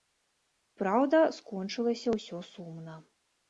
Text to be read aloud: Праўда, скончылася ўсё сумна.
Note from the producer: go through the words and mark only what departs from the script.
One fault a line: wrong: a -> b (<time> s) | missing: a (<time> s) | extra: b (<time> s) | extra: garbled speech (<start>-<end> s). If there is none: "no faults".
no faults